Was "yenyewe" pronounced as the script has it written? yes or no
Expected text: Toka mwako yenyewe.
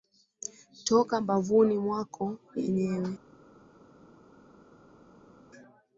yes